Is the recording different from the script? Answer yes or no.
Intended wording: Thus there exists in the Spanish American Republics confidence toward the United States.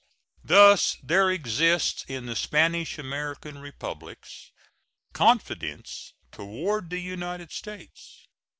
no